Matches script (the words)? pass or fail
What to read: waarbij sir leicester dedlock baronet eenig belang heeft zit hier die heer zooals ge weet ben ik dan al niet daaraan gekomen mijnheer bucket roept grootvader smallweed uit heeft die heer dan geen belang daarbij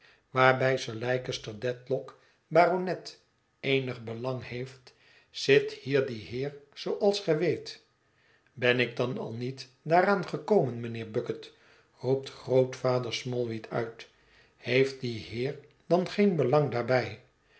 pass